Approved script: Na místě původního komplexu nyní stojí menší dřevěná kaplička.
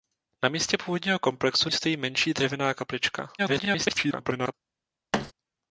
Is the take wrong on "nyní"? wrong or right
wrong